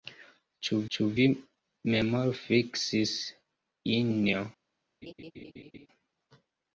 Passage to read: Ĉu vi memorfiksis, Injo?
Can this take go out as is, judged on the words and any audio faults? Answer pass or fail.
fail